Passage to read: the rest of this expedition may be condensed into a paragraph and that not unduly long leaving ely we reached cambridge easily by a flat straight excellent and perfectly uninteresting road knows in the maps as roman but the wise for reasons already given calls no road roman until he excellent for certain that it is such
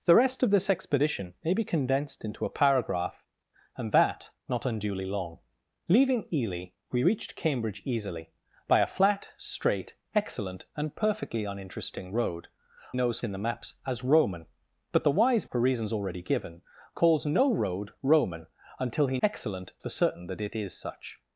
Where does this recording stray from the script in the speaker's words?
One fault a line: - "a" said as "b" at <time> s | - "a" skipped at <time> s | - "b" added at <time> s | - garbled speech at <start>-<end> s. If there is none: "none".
none